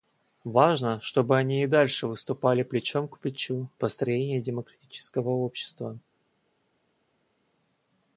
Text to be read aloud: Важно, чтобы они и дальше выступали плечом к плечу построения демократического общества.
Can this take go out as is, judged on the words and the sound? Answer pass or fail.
pass